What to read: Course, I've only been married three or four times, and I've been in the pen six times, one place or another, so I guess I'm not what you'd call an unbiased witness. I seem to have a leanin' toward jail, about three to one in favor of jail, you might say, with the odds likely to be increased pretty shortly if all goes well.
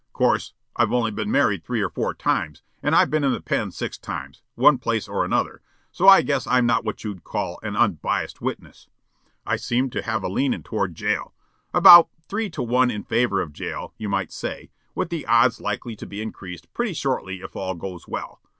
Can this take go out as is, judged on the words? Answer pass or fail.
pass